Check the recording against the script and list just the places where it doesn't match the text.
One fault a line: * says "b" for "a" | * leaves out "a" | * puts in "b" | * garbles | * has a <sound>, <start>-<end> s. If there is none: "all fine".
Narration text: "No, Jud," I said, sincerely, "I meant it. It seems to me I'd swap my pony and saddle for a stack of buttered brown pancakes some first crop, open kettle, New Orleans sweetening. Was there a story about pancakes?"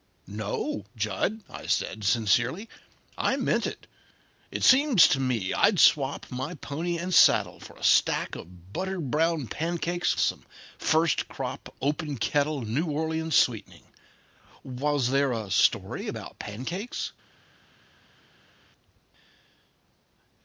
all fine